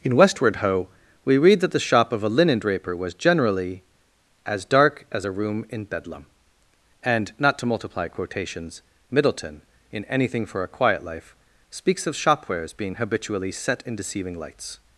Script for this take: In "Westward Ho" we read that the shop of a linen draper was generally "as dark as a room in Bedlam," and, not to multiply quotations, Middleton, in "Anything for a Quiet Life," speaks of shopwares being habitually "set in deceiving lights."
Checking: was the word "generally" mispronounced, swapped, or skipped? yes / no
no